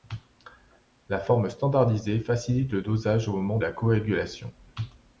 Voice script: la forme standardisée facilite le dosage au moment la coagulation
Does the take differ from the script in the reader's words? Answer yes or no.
no